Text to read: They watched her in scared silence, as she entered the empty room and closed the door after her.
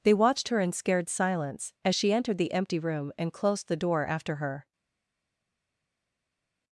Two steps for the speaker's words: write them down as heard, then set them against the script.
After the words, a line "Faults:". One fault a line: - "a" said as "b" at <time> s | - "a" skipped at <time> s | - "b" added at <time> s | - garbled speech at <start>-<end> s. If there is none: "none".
They watched her in scared silence, as she entered the empty room and closed the door after her.
Faults:
none